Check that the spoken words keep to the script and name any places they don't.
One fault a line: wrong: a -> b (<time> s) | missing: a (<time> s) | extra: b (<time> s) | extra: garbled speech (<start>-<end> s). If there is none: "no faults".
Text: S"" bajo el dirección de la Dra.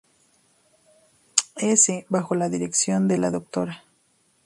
wrong: el -> la (2.3 s)